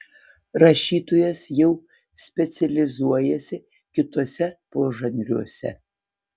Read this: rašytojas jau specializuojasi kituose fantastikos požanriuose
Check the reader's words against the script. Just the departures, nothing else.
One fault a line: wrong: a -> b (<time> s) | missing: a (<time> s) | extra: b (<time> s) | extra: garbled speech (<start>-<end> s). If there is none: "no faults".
missing: fantastikos (4.5 s)